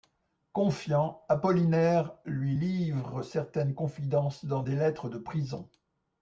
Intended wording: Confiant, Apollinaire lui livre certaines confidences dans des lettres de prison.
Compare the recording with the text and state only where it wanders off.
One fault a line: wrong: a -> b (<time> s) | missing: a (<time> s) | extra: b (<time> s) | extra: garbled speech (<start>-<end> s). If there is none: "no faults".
no faults